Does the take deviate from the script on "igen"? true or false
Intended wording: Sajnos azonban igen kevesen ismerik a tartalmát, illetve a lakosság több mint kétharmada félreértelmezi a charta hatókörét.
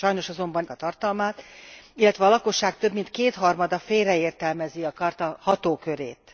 true